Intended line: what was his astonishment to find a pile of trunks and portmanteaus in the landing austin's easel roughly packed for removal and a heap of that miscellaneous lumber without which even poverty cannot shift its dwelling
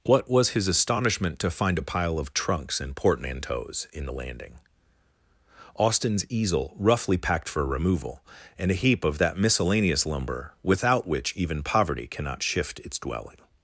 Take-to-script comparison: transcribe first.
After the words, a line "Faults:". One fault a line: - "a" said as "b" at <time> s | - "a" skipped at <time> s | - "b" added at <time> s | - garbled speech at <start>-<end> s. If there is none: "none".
what was his astonishment to find a pile of trunks and portmanteaus in the landing austin's easel roughly packed for removal and a heap of that miscellaneous lumber without which even poverty cannot shift its dwelling
Faults:
none